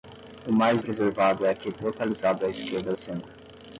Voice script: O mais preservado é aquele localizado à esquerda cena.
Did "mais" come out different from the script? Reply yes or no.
no